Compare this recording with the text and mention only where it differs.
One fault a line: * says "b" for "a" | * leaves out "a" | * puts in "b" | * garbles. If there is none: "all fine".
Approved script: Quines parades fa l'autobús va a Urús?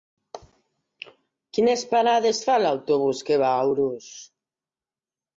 * puts in "que"